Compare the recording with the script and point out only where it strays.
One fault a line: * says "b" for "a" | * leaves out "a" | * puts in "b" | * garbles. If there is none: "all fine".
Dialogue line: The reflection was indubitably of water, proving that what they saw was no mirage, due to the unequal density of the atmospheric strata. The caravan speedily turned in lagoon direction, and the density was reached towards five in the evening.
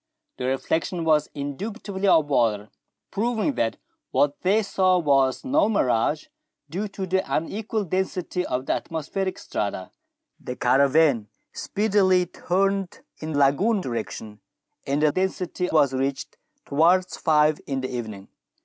all fine